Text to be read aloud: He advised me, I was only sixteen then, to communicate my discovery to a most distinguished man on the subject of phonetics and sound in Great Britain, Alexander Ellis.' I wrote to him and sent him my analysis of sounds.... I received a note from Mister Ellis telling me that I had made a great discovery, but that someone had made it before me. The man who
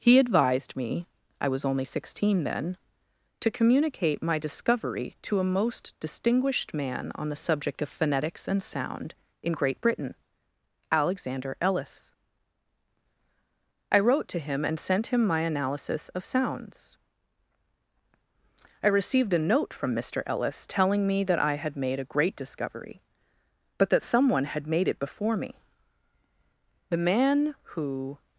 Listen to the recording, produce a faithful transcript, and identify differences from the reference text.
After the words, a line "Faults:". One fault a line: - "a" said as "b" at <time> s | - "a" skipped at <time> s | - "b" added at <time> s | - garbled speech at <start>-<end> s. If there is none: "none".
He advised me, I was only sixteen then, to communicate my discovery to a most distinguished man on the subject of phonetics and sound in Great Britain, Alexander Ellis.' I wrote to him and sent him my analysis of sounds.... I received a note from Mister Ellis telling me that I had made a great discovery, but that someone had made it before me. The man who
Faults:
none